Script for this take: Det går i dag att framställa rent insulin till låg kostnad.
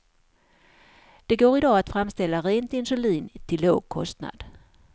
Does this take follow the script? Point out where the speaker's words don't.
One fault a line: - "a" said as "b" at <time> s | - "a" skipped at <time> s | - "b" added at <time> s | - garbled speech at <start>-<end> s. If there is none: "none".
none